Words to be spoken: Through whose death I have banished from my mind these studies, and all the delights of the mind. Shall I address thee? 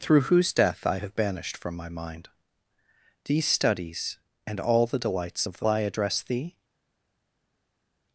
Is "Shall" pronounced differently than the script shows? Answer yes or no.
yes